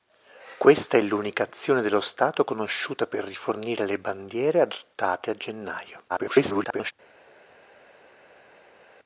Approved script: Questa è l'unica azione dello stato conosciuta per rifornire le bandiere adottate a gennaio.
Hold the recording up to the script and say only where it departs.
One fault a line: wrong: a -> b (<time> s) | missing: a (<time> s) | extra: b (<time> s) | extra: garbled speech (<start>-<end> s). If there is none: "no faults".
extra: garbled speech (6.1-6.9 s)